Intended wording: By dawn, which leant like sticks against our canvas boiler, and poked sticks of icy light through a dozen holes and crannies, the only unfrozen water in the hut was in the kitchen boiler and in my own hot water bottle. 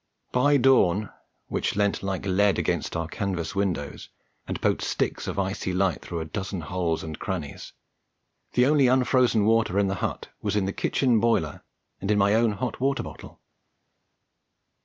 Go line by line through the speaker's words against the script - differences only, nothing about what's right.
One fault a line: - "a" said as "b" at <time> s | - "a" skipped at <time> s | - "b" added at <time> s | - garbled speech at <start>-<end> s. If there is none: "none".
- "sticks" said as "lead" at 2.2 s
- "boiler" said as "windows" at 3.5 s